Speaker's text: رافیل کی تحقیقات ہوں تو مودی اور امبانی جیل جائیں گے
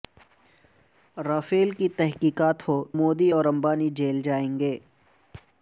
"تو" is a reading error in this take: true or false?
true